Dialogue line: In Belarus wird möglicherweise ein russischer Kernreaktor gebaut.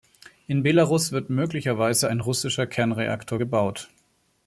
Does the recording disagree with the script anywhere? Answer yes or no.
no